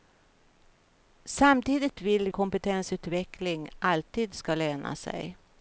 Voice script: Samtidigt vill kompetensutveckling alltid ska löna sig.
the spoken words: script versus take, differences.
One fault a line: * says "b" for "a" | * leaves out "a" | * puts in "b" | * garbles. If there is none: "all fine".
all fine